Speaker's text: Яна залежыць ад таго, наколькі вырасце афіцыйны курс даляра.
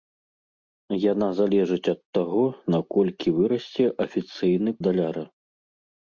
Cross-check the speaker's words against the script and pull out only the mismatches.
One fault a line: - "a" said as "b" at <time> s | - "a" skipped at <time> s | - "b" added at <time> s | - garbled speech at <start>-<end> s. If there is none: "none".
- "курс" skipped at 4.7 s